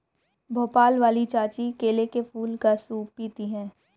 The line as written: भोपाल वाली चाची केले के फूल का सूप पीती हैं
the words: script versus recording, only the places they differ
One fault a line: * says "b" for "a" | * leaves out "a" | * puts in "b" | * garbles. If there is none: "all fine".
all fine